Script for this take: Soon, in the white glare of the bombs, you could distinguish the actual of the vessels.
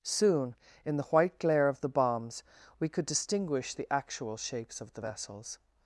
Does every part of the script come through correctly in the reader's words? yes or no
no